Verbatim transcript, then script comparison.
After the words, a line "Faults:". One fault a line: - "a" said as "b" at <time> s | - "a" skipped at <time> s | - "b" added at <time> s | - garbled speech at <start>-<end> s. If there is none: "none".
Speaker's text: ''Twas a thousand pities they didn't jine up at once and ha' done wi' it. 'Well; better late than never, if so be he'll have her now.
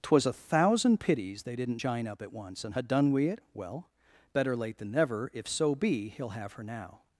''Twas a thousand pities they didn't jine up at once and ha' done wi' it. 'Well; better late than never, if so be he'll have her now.
Faults:
none